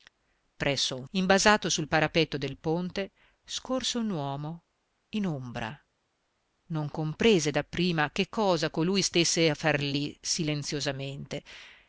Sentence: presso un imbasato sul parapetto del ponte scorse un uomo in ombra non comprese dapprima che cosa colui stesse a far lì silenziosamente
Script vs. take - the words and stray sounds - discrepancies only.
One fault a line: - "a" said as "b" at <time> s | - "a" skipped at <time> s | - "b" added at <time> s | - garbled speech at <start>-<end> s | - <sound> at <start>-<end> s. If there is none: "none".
none